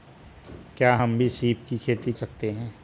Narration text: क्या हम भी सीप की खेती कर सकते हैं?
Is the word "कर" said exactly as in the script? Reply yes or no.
no